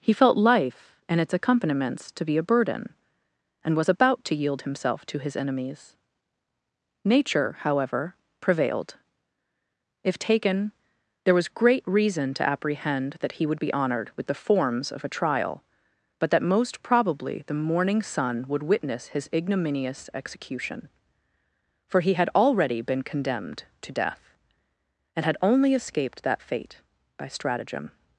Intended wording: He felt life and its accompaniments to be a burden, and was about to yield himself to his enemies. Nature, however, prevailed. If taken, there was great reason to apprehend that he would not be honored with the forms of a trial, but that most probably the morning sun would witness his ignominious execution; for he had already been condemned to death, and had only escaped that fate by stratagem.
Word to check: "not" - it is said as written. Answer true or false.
false